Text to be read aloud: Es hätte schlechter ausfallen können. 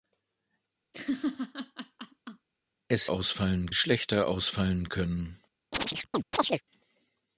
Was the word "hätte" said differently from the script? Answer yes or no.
yes